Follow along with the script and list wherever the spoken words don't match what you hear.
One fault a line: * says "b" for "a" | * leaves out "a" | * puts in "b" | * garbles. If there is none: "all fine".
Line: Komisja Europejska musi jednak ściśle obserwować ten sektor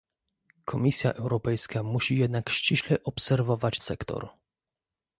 * leaves out "ten"